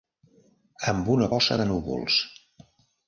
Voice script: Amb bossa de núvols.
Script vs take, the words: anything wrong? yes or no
yes